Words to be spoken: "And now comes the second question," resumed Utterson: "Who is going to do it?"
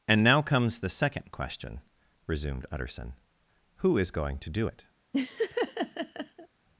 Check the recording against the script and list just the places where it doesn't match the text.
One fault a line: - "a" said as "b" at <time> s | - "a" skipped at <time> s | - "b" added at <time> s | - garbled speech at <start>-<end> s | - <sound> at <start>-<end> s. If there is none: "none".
- laugh at 5.1-6.5 s